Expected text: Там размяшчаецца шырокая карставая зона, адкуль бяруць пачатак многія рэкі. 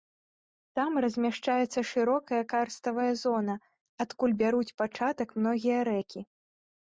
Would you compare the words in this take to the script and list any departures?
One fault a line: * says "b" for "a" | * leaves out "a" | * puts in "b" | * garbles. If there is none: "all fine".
all fine